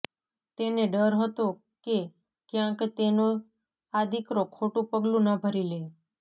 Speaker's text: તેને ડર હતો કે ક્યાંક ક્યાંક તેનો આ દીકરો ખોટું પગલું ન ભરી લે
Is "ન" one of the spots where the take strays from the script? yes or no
no